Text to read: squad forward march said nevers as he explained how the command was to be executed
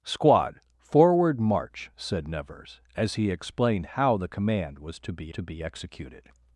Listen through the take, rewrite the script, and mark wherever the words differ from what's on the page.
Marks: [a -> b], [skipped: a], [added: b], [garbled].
squad forward march said nevers as he explained how the command was to be [added: to be] executed